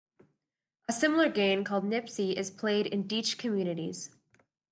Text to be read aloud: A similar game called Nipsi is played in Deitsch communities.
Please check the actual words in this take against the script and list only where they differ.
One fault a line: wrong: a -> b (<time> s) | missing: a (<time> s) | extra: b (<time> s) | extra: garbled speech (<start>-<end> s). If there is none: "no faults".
no faults